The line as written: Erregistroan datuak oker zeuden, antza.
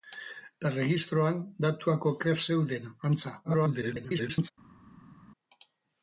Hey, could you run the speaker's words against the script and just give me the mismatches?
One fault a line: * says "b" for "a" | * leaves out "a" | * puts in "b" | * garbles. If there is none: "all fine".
* garbles